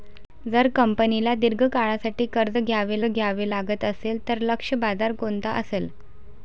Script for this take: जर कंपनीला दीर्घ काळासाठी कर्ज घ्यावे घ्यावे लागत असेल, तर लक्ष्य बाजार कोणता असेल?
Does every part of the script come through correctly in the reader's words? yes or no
yes